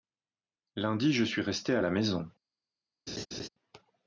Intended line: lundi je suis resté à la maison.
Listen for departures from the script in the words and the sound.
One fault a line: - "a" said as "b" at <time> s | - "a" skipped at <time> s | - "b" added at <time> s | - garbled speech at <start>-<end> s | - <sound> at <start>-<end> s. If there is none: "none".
- laugh at 3.1-3.5 s